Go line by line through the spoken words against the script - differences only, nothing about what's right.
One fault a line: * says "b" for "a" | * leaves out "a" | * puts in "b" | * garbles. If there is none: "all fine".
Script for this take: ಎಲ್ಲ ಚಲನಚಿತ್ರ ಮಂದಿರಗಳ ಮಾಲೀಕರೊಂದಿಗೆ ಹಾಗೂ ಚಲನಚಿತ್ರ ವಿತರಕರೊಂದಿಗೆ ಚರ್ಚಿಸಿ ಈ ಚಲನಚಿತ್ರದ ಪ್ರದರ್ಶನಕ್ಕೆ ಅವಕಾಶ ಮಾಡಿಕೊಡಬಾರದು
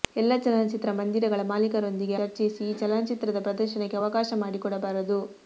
* leaves out "ಹಾಗೂ ಚಲನಚಿತ್ರ ವಿತರಕರೊಂದಿಗೆ"